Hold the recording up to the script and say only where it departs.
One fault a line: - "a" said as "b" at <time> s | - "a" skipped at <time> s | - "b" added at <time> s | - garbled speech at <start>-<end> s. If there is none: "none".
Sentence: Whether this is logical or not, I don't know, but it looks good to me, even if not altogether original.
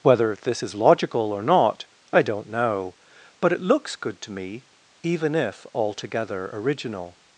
- "not" skipped at 5.7 s